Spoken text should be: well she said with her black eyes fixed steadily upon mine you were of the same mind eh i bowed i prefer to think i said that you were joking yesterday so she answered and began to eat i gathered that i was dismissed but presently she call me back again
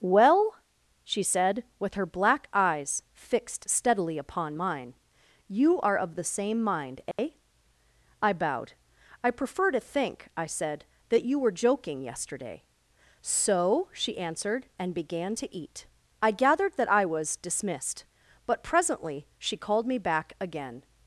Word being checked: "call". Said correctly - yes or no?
no